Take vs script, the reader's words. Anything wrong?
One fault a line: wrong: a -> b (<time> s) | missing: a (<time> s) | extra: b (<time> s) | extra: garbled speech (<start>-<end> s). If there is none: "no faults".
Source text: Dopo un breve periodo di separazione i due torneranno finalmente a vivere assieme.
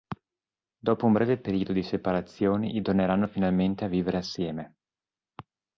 missing: due (2.8 s)